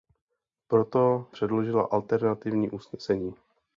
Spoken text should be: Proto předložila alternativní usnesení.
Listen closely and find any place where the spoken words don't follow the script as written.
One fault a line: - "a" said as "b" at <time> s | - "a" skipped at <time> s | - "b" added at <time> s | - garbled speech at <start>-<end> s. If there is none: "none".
none